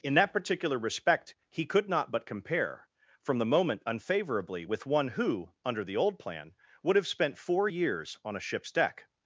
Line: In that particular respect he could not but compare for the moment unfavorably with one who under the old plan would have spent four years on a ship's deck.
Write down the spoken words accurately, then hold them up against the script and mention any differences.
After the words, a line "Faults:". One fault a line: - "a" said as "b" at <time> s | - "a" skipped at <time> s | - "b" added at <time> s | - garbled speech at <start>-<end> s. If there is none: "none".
In that particular respect he could not but compare from the moment unfavorably with one who under the old plan would have spent four years on a ship's deck.
Faults:
- "for" said as "from" at 3.2 s